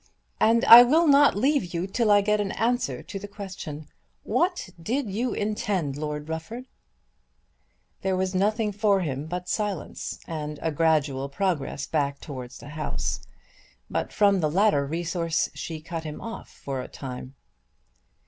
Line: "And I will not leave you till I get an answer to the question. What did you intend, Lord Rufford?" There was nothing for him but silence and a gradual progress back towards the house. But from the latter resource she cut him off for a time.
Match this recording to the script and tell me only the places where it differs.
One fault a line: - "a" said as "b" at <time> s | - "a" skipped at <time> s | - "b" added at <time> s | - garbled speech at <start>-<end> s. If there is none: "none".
none